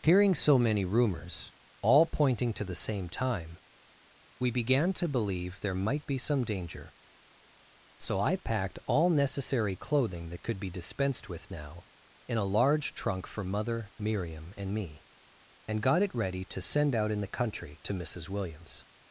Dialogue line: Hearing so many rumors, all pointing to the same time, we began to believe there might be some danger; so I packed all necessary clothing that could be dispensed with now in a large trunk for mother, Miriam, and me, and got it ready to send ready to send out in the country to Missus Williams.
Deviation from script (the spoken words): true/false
true